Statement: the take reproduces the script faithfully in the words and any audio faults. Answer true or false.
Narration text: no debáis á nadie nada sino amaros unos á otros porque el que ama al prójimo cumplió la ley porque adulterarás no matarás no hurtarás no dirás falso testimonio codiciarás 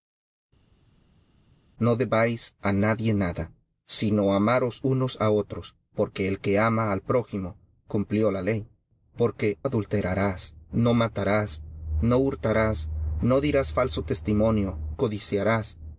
true